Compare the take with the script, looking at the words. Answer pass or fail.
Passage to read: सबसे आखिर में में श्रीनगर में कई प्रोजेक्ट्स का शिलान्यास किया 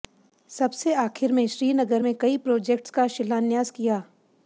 fail